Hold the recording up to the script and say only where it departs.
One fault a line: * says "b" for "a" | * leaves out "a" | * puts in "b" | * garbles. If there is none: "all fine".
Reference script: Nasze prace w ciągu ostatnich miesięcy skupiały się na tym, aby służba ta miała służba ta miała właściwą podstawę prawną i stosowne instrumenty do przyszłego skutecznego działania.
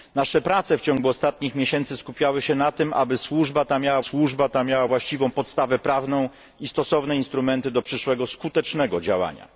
all fine